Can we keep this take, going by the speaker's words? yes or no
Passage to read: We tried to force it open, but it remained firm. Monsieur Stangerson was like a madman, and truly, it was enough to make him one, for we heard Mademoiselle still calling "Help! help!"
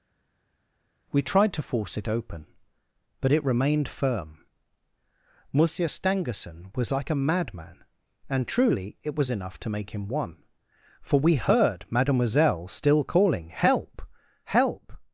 yes